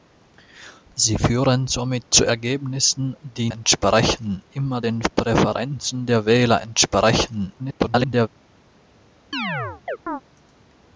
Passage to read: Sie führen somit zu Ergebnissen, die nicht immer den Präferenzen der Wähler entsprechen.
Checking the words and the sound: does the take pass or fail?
fail